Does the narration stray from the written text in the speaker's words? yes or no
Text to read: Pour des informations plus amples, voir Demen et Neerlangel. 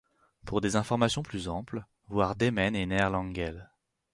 no